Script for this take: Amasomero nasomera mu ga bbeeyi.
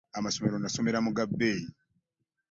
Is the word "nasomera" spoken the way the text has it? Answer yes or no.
yes